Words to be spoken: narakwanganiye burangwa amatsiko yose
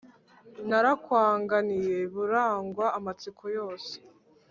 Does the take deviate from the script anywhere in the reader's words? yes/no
no